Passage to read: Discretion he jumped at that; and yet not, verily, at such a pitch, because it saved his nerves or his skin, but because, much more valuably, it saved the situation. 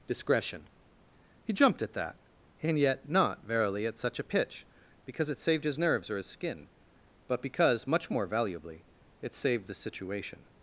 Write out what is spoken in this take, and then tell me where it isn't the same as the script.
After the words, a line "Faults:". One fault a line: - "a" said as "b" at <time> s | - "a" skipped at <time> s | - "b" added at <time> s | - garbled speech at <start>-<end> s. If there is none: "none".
Discretion he jumped at that; and yet not, verily, at such a pitch, because it saved his nerves or his skin, but because, much more valuably, it saved the situation.
Faults:
none